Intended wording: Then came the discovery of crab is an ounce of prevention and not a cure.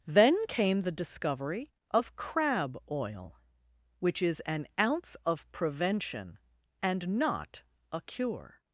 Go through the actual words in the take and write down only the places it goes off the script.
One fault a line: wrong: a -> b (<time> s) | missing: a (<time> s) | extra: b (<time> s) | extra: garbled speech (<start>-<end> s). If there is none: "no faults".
extra: oil which (2.9 s)